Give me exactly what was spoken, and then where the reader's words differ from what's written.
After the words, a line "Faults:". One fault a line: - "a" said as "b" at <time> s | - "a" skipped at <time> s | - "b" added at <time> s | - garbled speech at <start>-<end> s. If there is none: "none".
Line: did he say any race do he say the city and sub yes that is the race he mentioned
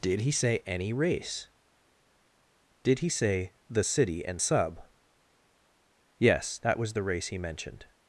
did he say any race did he say the city and sub yes that was the race he mentioned
Faults:
- "do" said as "did" at 2.8 s
- "is" said as "was" at 6.8 s